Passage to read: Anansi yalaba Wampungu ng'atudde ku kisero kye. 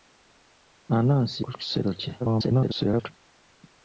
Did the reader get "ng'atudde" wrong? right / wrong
wrong